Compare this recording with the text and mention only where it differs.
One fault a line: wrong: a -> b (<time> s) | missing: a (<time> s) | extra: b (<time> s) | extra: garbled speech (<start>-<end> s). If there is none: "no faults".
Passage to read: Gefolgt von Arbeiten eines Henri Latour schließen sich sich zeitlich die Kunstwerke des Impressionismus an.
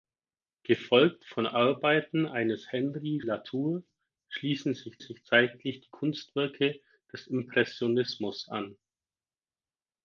no faults